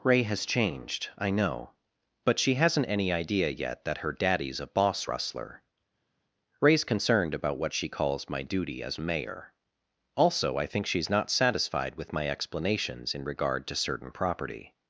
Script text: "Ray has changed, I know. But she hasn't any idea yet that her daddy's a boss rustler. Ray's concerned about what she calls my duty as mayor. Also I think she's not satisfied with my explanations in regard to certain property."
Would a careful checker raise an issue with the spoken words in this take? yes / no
no